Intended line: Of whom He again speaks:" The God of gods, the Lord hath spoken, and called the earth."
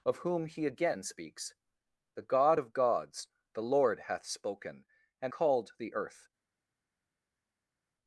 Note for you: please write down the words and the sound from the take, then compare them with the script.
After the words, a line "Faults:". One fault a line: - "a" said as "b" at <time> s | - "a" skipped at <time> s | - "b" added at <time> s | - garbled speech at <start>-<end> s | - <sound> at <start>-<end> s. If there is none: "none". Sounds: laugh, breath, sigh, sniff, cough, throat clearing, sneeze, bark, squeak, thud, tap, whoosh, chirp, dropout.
Of whom He again speaks:" The God of gods, the Lord hath spoken, and called the earth."
Faults:
none